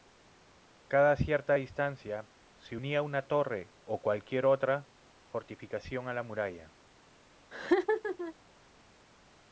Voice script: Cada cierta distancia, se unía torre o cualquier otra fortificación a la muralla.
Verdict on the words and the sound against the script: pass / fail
fail